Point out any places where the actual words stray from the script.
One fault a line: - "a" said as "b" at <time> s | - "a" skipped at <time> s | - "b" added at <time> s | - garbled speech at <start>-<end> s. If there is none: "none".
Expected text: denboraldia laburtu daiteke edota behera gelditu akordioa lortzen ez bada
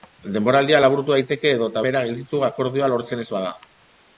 none